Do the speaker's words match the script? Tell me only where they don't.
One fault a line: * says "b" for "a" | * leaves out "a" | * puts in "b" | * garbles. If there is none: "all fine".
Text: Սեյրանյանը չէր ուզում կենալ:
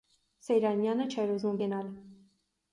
all fine